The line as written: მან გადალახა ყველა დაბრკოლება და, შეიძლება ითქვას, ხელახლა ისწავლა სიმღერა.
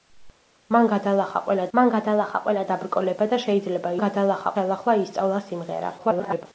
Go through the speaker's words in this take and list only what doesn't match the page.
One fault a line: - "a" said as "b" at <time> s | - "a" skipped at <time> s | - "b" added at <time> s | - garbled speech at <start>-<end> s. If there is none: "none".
- "მან გადალახა ყველა" added at 1.8 s
- "ითქვას" said as "გადალახა" at 4.0 s
- garbled speech at 6.0-6.5 s